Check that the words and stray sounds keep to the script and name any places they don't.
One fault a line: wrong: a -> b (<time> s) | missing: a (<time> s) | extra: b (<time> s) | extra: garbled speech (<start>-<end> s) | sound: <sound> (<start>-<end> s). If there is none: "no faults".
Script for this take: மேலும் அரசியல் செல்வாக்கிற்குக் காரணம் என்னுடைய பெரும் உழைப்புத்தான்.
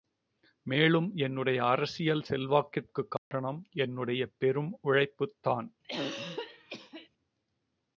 extra: என்னுடைய (1.1 s)
sound: dropout (3.2-3.3 s)
sound: throat clearing (5.8-7.1 s)